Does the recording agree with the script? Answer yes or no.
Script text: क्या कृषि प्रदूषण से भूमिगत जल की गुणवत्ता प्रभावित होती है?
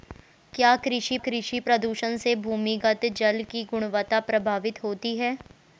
no